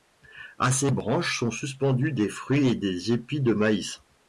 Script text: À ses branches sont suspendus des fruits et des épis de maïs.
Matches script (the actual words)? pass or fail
pass